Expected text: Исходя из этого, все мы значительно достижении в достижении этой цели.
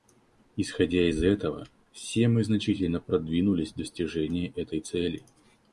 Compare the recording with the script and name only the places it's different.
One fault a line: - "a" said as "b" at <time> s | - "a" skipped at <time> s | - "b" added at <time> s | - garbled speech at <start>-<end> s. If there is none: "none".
- "достижении" said as "продвинулись" at 3.0 s